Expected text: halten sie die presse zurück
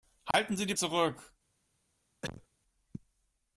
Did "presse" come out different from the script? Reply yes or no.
yes